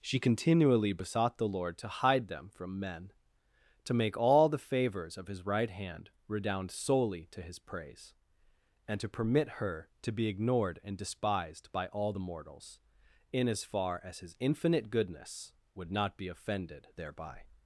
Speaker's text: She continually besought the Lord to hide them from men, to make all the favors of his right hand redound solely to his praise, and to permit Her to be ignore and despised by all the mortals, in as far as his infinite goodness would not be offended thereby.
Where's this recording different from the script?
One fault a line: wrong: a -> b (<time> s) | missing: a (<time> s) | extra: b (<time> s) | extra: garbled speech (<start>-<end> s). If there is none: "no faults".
wrong: ignore -> ignored (10.3 s)